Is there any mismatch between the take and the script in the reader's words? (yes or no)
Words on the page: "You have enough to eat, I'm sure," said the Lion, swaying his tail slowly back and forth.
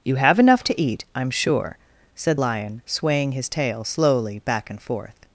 yes